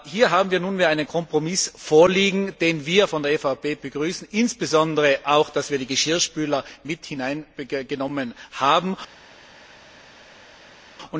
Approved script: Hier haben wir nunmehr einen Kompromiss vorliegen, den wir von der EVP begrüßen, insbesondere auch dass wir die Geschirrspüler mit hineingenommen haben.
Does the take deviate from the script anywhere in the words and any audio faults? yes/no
no